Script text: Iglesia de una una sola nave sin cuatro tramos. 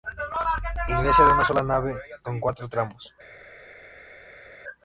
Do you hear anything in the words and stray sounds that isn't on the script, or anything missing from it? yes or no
yes